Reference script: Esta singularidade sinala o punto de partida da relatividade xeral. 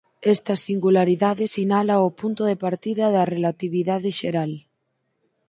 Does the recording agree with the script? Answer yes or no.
yes